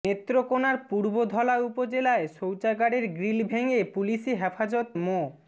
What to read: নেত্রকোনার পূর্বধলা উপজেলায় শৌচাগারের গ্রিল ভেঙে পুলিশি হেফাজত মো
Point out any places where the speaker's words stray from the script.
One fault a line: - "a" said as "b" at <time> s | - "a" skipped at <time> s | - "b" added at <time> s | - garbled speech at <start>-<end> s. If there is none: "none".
none